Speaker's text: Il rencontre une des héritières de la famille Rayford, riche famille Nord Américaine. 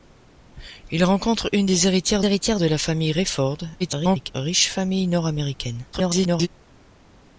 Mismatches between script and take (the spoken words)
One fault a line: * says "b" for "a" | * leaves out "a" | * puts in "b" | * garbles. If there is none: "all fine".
* puts in "héritières"
* garbles
* garbles